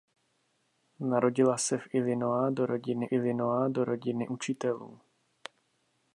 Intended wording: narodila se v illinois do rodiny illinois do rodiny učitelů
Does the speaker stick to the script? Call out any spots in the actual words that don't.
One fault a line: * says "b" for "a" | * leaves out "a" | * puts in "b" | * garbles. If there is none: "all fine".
all fine